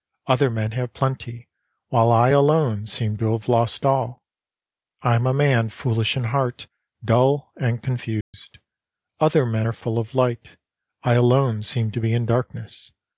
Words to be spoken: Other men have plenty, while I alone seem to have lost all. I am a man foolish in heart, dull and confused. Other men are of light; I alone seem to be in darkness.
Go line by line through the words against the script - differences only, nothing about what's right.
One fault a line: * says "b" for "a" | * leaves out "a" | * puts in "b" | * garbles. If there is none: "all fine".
* puts in "full"